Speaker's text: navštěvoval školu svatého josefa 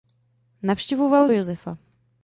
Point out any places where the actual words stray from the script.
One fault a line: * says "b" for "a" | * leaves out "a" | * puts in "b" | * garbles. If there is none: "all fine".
* leaves out "školu svatého"